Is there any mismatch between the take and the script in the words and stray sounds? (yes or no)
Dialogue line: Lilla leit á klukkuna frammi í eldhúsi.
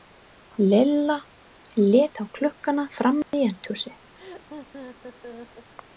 yes